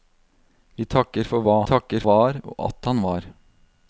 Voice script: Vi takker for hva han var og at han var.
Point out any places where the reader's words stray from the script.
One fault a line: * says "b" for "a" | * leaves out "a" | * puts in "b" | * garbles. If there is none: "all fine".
* says "takker" for "han"